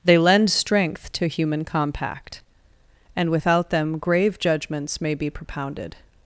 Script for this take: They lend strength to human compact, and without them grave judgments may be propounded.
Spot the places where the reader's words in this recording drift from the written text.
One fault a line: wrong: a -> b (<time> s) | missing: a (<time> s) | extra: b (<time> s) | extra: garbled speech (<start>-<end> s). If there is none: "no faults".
no faults